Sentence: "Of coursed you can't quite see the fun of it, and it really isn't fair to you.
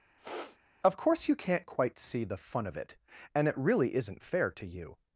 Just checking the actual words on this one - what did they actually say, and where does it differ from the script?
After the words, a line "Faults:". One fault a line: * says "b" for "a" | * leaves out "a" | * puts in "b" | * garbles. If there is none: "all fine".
"Of course you can't quite see the fun of it, and it really isn't fair to you.
Faults:
* says "course" for "coursed"